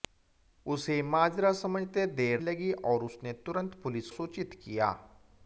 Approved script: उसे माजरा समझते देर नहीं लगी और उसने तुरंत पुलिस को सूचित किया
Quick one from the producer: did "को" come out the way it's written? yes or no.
no